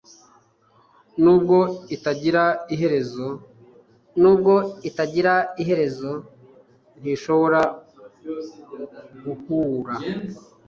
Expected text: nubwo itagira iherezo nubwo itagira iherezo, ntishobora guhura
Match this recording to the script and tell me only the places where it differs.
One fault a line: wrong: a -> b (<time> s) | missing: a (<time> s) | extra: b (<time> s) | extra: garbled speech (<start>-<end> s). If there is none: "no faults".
no faults